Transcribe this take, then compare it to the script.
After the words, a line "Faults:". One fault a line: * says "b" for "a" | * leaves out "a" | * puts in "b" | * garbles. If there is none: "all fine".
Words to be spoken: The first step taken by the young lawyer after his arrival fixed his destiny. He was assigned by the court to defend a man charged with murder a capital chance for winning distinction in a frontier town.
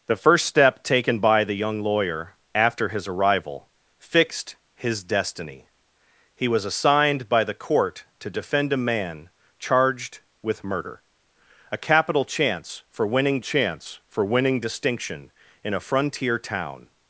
The first step taken by the young lawyer after his arrival fixed his destiny. He was assigned by the court to defend a man charged with murder a capital chance for winning chance for winning distinction in a frontier town.
Faults:
* puts in "chance for winning"